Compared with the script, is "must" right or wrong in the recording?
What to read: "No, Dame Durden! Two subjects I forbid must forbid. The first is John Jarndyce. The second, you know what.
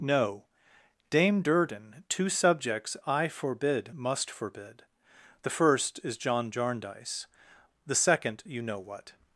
right